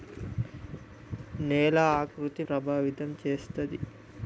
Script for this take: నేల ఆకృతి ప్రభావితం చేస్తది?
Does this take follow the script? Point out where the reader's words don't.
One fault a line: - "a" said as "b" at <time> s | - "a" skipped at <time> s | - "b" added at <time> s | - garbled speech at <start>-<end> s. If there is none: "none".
none